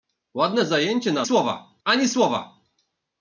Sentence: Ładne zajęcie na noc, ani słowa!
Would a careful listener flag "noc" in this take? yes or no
yes